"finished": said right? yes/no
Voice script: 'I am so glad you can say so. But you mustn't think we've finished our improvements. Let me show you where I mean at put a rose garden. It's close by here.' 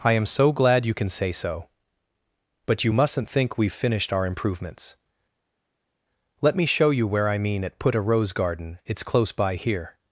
yes